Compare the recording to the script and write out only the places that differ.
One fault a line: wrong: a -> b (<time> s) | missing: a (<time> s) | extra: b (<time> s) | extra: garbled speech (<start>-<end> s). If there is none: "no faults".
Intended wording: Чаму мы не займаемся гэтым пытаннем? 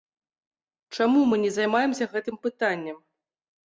no faults